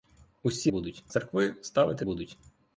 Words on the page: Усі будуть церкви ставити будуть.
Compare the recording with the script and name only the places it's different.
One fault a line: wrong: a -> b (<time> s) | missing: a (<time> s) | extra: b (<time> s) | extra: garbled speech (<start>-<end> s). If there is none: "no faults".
no faults